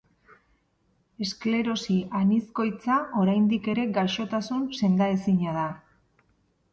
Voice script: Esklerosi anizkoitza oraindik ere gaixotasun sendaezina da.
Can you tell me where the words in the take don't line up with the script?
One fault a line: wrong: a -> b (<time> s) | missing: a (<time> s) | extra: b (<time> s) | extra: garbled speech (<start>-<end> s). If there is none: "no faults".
no faults